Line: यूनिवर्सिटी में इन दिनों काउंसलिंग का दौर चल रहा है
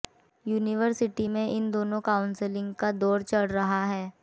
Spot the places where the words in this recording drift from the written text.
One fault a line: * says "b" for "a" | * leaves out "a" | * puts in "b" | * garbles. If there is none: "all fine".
all fine